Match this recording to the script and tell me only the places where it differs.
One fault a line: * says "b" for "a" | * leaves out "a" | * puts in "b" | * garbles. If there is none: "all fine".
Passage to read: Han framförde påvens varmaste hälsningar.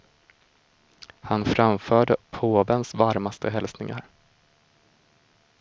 all fine